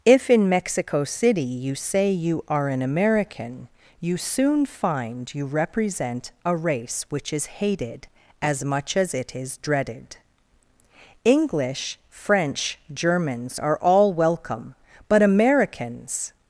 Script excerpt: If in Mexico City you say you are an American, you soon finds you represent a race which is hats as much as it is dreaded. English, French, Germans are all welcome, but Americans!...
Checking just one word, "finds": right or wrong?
wrong